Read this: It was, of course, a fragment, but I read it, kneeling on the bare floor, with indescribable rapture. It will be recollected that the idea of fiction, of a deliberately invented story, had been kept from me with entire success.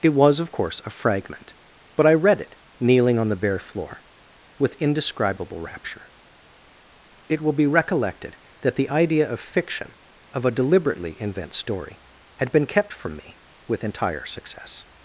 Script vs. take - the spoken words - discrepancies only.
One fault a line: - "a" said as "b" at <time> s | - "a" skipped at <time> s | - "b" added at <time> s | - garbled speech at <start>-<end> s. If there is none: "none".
- "invented" said as "invent" at 11.2 s